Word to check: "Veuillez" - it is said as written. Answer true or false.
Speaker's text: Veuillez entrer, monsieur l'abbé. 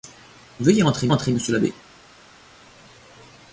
true